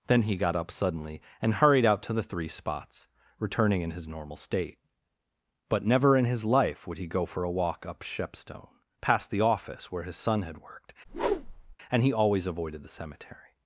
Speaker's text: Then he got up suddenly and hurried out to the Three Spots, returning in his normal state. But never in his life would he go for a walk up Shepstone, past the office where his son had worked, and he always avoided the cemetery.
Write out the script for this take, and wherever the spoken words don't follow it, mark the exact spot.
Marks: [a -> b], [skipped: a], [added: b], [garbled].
Then he got up suddenly and hurried out to the Three Spots, returning in his normal state. But never in his life would he go for a walk up Shepstone, past the office where his son had worked, and he always avoided the cemetery.